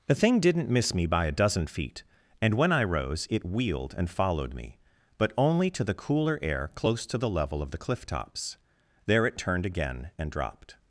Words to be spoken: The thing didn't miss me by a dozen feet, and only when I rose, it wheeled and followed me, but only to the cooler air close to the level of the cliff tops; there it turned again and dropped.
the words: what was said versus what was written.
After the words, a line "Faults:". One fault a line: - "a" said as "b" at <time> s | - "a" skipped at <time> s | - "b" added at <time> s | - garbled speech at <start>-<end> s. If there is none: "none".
The thing didn't miss me by a dozen feet, and when I rose, it wheeled and followed me, but only to the cooler air close to the level of the cliff tops; there it turned again and dropped.
Faults:
- "only" skipped at 2.5 s